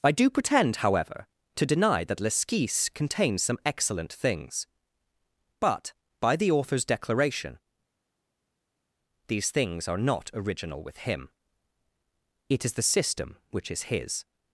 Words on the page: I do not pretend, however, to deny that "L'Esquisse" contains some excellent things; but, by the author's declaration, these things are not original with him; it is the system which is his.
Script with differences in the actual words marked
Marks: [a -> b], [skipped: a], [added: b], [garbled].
I do [skipped: not] pretend, however, to deny that "L'Esquisse" contains some excellent things; but, by the author's declaration, these things are not original with him; it is the system which is his.